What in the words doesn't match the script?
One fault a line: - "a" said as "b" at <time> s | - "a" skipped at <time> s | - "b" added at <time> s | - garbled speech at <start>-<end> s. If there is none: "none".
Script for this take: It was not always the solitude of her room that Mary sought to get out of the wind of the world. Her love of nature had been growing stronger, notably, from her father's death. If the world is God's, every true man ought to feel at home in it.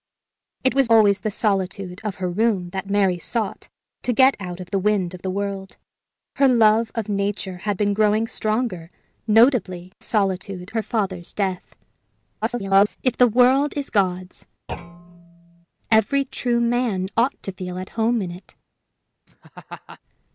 - "not" skipped at 0.9 s
- "from" said as "solitude" at 10.0 s
- garbled speech at 12.4-13.0 s